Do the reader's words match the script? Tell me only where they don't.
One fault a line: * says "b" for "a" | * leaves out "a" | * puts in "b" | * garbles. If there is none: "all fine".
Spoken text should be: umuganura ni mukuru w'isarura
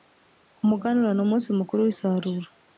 * puts in "umunsi"